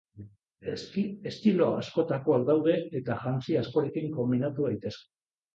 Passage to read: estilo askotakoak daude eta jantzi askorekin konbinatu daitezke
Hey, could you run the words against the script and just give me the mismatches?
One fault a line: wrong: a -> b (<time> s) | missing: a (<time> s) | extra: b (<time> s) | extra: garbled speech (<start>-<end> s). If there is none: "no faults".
no faults